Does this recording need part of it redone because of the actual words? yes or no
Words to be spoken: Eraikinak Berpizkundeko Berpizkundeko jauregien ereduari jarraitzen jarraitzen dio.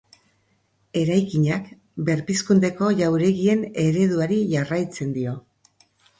yes